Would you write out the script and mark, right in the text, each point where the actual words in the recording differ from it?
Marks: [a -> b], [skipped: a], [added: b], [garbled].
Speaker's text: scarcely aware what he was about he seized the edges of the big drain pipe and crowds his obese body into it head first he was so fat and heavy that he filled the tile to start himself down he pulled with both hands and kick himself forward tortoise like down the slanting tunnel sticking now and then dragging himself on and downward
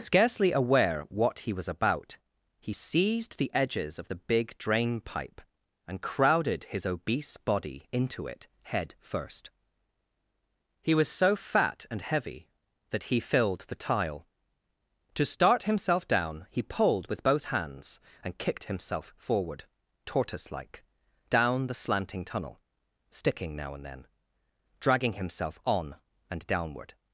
scarcely aware what he was about he seized the edges of the big drain pipe and [crowds -> crowded] his obese body into it head first he was so fat and heavy that he filled the tile to start himself down he pulled with both hands and [kick -> kicked] himself forward tortoise like down the slanting tunnel sticking now and then dragging himself on and downward